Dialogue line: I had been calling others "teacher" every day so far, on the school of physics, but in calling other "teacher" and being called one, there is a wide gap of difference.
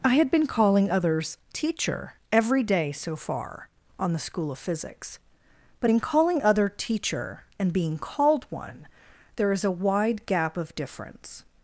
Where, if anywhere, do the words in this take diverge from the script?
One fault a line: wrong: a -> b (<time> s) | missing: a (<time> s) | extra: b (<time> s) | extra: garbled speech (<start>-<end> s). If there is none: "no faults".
no faults